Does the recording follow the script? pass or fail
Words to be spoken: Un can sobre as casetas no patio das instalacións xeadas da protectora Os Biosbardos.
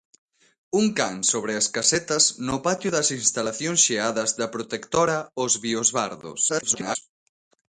fail